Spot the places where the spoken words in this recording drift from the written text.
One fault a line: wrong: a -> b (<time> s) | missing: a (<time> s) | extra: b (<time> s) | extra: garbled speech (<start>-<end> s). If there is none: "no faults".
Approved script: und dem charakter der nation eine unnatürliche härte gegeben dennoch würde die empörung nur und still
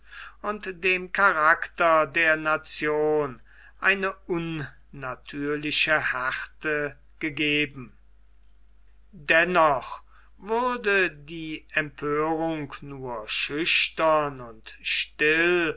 extra: schüchtern (13.3 s)